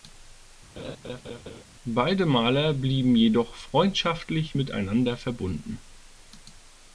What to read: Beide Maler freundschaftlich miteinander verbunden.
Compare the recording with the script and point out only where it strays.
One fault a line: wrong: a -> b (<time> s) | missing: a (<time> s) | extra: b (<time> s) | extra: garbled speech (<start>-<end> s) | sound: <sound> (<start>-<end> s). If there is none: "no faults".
sound: laugh (0.8-1.6 s)
extra: blieben jedoch (2.7 s)